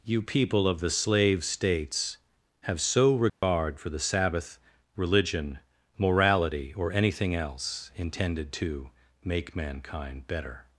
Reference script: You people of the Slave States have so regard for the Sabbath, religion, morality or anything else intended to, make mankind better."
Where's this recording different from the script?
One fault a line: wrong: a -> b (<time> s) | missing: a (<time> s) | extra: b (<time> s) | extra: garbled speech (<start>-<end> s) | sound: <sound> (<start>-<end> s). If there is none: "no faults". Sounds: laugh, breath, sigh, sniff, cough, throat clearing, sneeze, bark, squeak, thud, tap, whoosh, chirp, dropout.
sound: dropout (3.3-3.4 s)